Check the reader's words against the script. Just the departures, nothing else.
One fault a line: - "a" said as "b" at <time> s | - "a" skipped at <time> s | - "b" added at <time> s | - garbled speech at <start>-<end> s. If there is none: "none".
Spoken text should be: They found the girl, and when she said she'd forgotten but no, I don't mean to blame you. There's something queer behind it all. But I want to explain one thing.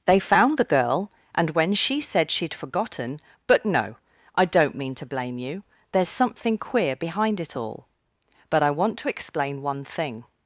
none